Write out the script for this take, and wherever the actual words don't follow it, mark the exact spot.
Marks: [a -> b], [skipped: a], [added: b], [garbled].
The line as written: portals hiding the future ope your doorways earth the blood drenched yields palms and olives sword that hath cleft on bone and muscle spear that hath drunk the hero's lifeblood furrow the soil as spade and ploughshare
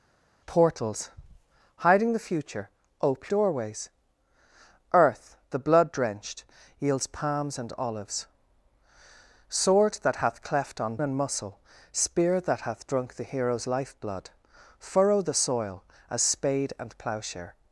portals hiding the future ope [skipped: your] doorways earth the blood drenched yields palms and olives sword that hath cleft on [skipped: bone] and muscle spear that hath drunk the hero's lifeblood furrow the soil as spade and ploughshare